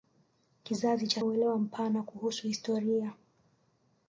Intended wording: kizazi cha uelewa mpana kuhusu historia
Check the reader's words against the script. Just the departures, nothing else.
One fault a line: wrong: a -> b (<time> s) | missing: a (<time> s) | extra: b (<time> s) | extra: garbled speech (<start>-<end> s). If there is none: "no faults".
no faults